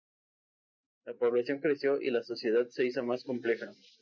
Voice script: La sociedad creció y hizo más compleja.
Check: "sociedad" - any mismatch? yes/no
yes